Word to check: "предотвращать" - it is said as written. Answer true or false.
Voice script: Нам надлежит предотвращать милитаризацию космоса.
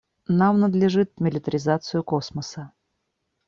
false